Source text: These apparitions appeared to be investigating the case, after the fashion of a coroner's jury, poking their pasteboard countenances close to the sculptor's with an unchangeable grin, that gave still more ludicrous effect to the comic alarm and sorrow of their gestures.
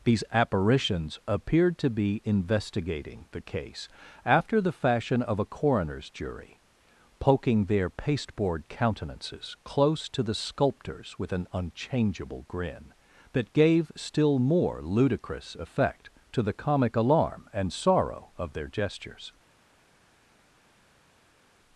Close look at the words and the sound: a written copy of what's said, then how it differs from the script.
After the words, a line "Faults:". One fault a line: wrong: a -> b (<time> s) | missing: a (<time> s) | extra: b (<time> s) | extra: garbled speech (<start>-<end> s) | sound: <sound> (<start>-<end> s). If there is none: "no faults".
These apparitions appeared to be investigating the case, after the fashion of a coroner's jury, poking their pasteboard countenances close to the sculptor's with an unchangeable grin, that gave still more ludicrous effect to the comic alarm and sorrow of their gestures.
Faults:
no faults